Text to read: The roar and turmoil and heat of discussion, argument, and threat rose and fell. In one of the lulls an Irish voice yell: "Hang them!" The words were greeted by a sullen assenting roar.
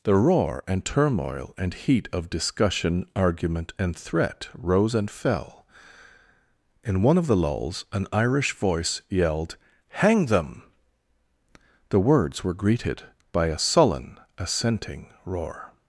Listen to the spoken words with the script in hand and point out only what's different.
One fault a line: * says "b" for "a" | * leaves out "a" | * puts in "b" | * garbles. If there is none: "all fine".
* says "yelled" for "yell"